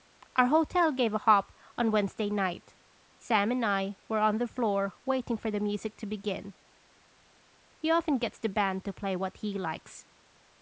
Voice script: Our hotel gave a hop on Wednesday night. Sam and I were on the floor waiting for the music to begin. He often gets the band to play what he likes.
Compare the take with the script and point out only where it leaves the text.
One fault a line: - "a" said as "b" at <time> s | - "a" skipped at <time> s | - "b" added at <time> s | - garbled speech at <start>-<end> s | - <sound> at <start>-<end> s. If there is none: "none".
none